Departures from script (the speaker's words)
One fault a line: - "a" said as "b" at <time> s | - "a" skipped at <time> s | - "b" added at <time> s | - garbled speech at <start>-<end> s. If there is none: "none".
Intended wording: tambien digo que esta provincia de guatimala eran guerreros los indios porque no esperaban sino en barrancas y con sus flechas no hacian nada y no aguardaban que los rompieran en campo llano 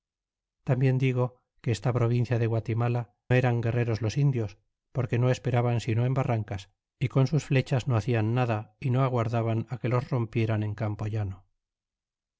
none